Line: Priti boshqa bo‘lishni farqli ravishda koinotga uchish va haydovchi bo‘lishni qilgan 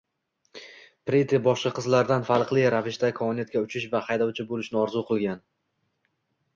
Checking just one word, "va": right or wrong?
right